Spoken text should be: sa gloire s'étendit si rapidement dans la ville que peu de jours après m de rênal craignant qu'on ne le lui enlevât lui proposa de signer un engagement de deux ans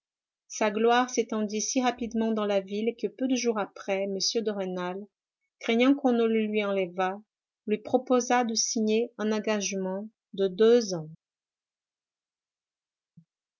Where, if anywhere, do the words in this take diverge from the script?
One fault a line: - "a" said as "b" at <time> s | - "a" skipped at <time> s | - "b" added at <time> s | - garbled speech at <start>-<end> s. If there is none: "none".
none